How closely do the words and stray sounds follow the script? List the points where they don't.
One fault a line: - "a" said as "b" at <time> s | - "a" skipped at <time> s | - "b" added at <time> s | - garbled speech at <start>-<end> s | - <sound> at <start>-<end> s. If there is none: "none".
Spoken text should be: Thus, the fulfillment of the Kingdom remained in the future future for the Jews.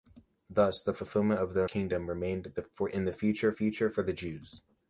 none